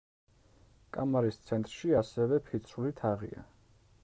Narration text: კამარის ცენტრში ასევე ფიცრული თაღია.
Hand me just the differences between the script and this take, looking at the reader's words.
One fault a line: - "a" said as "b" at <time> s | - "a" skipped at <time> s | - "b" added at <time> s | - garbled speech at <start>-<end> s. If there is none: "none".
none